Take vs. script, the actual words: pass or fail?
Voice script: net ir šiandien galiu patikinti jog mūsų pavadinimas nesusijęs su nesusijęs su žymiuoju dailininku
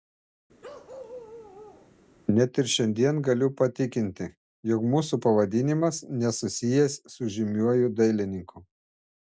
fail